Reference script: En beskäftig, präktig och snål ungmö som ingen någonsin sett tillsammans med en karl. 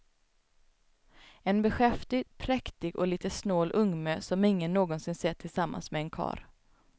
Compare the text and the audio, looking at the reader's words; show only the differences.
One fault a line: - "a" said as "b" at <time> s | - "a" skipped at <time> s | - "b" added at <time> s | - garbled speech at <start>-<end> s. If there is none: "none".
- "lite" added at 3.1 s